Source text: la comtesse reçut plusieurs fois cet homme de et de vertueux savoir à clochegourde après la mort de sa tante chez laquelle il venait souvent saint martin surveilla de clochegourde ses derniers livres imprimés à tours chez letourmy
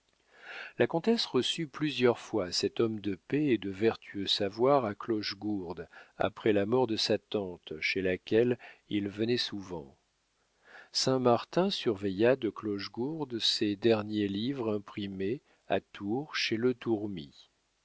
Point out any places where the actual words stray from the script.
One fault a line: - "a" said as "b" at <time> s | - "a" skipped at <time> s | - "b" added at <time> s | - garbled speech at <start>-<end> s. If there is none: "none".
- "paix" added at 3.1 s